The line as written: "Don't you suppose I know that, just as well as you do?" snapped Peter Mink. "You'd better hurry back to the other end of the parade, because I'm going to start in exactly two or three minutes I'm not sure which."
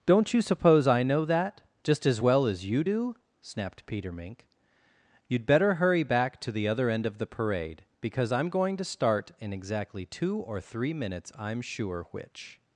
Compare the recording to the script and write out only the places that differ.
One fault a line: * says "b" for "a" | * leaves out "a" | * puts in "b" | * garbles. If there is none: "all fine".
* leaves out "not"